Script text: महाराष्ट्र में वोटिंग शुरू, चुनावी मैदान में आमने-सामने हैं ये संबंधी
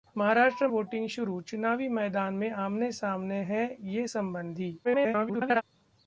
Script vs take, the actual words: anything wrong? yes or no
yes